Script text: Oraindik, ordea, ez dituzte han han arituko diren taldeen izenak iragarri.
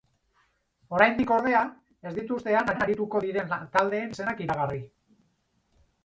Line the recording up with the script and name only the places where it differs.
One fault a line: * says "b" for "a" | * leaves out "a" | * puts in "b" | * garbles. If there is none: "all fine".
all fine